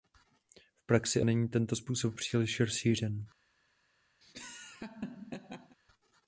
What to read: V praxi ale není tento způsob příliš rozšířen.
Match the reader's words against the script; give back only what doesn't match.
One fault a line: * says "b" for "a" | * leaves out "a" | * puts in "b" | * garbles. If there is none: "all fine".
* leaves out "ale"